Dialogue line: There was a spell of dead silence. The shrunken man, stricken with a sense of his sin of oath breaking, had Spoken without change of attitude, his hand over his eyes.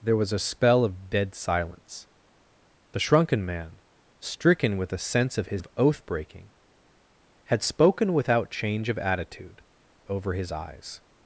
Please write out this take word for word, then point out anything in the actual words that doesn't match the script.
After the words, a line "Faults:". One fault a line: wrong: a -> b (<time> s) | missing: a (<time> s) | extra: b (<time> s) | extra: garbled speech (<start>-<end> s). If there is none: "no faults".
There was a spell of dead silence. The shrunken man, stricken with a sense of his of oath breaking, had Spoken without change of attitude, over his eyes.
Faults:
missing: sin (5.6 s)
missing: his hand (9.6 s)